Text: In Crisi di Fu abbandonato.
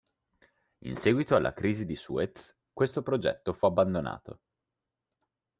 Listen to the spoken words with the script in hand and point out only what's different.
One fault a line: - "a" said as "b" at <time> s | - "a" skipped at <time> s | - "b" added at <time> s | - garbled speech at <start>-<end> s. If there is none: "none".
- "seguito alla" added at 0.9 s
- "Suez questo progetto" added at 2.0 s